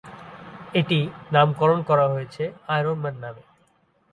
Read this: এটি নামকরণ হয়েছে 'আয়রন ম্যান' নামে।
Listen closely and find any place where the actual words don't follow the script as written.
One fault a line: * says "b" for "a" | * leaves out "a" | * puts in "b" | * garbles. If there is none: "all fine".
* puts in "করা"